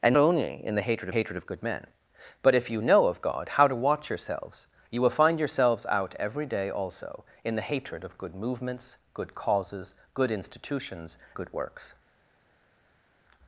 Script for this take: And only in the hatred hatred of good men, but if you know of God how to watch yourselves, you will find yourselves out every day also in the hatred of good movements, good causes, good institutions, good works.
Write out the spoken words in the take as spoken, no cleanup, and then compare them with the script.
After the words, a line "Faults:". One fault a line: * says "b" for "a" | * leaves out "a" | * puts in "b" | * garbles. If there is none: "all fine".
And only in the hatred hatred of good men, but if you know of God how to watch yourselves, you will find yourselves out every day also in the hatred of good movements, good causes, good institutions, good works.
Faults:
all fine